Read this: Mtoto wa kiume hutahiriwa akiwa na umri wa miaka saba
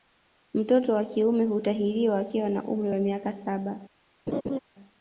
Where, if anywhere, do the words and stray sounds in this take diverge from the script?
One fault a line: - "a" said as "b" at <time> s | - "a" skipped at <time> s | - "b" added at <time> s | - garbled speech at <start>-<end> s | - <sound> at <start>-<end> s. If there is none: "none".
- laugh at 4.3-4.6 s